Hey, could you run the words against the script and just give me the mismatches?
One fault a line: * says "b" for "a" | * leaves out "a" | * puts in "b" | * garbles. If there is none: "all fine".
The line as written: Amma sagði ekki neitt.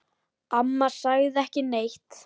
all fine